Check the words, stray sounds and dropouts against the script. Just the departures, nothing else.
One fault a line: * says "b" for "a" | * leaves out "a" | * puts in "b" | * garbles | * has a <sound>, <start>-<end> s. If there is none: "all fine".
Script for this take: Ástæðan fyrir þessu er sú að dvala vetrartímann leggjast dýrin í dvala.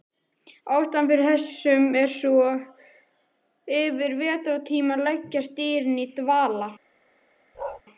* says "yfir" for "dvala"
* has a bark, 7.5-7.8 s